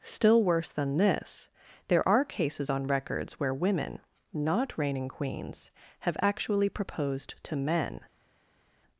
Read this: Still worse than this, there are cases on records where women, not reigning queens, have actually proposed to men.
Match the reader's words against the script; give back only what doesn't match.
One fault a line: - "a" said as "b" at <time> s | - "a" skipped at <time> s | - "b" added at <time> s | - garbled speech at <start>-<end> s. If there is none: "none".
none